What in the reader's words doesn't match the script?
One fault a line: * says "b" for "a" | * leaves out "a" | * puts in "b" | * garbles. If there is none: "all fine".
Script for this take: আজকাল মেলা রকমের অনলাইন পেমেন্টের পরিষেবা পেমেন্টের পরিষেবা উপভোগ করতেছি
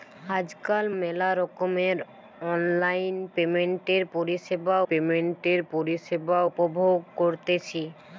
all fine